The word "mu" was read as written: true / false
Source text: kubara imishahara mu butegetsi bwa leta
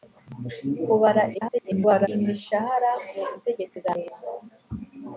true